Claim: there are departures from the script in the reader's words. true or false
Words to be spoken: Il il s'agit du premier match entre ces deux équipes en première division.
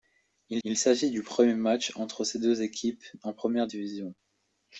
false